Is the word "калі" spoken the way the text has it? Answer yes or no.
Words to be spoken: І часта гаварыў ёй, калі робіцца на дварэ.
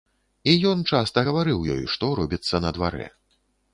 no